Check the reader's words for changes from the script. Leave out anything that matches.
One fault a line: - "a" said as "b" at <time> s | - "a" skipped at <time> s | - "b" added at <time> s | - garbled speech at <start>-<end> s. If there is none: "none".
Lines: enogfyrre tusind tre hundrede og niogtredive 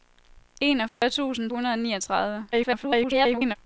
- "tre" skipped at 1.5 s
- garbled speech at 2.5-3.6 s